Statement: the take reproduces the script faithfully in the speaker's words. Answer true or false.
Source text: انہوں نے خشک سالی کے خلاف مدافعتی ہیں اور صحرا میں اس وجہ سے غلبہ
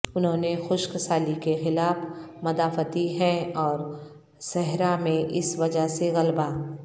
true